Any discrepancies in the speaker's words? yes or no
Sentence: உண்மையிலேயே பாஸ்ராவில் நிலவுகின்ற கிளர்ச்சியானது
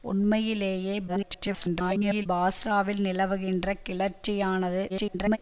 yes